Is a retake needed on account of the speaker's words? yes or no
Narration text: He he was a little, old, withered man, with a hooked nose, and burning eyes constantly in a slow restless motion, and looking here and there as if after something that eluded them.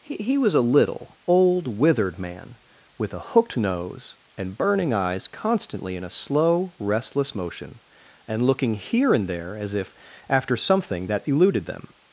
no